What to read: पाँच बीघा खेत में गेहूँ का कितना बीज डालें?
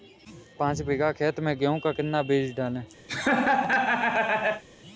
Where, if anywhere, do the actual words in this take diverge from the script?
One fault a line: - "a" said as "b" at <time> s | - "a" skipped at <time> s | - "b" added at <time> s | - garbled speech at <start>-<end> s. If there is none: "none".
none